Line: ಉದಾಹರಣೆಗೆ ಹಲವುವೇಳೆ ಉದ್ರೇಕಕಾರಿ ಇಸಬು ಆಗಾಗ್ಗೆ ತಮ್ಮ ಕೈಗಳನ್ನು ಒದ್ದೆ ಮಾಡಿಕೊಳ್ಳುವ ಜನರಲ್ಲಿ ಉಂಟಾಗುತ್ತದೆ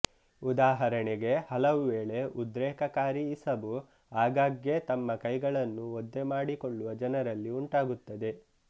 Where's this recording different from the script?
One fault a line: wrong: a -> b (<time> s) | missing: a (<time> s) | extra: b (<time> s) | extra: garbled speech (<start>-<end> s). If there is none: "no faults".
no faults